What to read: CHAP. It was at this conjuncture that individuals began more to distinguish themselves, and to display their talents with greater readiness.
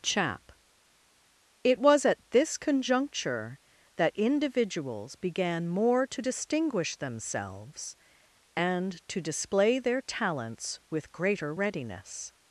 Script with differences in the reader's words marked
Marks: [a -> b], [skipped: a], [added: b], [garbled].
CHAP. It was at this conjuncture that individuals began more to distinguish themselves, and to display their talents with greater readiness.